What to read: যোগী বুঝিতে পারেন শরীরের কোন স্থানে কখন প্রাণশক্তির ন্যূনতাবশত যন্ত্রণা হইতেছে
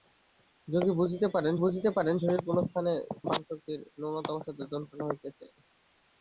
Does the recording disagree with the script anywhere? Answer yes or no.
yes